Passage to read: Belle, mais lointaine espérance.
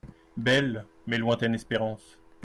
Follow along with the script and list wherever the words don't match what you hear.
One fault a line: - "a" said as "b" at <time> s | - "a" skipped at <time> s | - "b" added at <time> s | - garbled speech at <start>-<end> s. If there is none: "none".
none